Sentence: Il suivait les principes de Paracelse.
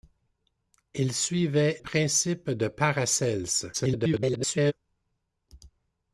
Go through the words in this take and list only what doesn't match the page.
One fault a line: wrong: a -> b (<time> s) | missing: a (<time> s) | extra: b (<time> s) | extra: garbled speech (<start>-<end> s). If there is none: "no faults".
missing: les (1.8 s)
extra: garbled speech (3.7-4.7 s)